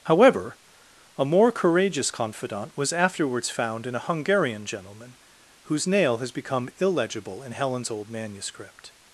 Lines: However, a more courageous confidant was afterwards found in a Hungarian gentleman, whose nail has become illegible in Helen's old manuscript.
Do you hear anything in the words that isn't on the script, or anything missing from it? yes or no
no